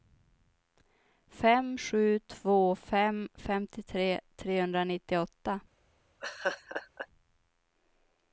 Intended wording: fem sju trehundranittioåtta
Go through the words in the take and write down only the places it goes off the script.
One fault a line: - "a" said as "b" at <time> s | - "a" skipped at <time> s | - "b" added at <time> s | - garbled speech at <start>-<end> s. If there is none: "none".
- "två fem femtiotre" added at 2.2 s